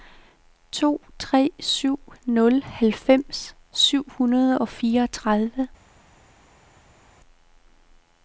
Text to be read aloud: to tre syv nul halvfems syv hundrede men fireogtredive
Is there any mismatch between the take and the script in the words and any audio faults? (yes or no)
yes